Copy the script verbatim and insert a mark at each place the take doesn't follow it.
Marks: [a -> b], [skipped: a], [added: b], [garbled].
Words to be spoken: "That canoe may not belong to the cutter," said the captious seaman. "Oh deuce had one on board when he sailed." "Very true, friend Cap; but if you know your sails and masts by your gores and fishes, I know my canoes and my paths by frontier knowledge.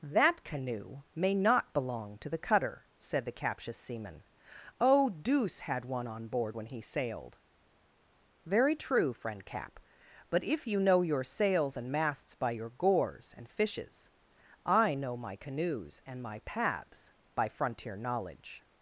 "That canoe may not belong to the cutter," said the captious seaman. "Oh deuce had one on board when he sailed." "Very true, friend Cap; but if you know your sails and masts by your gores and fishes, I know my canoes and my paths by frontier knowledge.